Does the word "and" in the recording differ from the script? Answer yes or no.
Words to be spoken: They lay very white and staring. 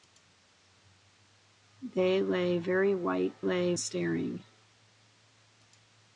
yes